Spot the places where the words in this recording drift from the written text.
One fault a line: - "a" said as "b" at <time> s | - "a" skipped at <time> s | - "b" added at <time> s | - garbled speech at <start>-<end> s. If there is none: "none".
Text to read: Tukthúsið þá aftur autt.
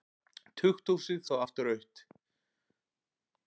none